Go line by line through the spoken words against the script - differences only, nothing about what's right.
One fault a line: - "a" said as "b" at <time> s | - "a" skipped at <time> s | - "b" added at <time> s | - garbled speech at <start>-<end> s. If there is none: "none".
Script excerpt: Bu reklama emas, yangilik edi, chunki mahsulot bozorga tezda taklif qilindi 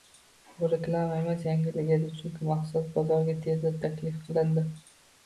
none